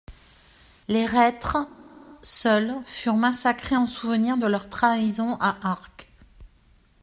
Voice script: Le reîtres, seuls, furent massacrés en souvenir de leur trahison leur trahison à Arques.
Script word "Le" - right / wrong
wrong